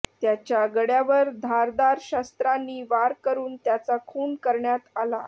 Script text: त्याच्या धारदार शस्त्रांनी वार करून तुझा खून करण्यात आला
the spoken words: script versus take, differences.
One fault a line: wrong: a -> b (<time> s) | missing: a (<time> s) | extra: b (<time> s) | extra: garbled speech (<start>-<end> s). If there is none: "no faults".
extra: गळ्यावर (0.7 s)
wrong: तुझा -> त्याचा (3.6 s)